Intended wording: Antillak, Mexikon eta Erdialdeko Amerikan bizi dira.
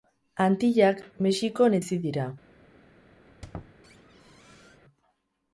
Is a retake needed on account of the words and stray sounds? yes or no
yes